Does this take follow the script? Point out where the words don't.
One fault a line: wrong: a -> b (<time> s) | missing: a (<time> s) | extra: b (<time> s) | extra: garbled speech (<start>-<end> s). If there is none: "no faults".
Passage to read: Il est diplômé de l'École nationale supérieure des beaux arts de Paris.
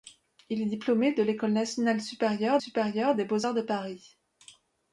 extra: supérieure (2.6 s)